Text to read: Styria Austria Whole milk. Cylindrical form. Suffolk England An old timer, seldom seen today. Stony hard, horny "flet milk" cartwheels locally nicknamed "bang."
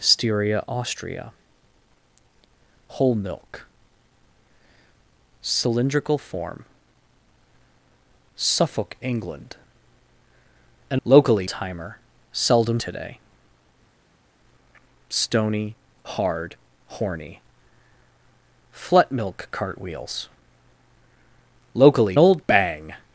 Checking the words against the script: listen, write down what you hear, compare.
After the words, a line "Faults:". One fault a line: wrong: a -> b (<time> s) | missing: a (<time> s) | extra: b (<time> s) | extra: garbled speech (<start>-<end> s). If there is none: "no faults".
Styria Austria Whole milk. Cylindrical form. Suffolk England An locally timer, seldom today. Stony hard, horny "flet milk" cartwheels locally old "bang."
Faults:
wrong: old -> locally (11.0 s)
missing: seen (12.8 s)
wrong: nicknamed -> old (22.2 s)